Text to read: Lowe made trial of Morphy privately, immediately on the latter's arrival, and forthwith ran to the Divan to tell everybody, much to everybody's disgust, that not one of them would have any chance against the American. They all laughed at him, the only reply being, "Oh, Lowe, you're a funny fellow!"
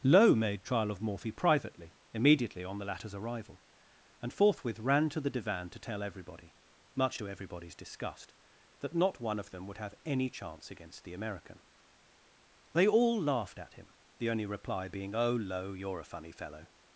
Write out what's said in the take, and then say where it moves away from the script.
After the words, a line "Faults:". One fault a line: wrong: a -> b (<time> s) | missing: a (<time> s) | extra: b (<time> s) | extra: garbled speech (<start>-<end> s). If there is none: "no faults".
Lowe made trial of Morphy privately, immediately on the latter's arrival, and forthwith ran to the Divan to tell everybody, much to everybody's disgust, that not one of them would have any chance against the American. They all laughed at him, the only reply being, "Oh, Lowe, you're a funny fellow!"
Faults:
no faults